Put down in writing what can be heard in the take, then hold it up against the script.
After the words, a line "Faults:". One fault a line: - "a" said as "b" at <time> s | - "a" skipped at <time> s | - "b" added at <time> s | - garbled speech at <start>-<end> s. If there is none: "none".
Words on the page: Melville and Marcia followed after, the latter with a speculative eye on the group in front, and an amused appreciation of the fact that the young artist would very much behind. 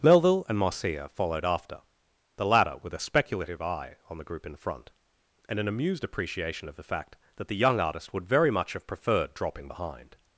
Melville and Marcia followed after, the latter with a speculative eye on the group in front, and an amused appreciation of the fact that the young artist would very much have preferred dropping behind.
Faults:
- "have preferred dropping" added at 8.7 s